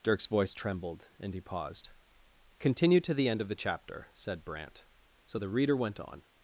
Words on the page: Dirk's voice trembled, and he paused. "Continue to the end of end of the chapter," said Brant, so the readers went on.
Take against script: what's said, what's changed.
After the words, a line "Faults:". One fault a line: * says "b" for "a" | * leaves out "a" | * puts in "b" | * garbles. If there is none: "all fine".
Dirk's voice trembled, and he paused. "Continue to the end of the chapter," said Brant, so the reader went on.
Faults:
* leaves out "end of"
* says "reader" for "readers"